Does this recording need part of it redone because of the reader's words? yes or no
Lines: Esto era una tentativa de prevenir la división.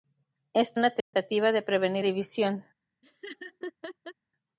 yes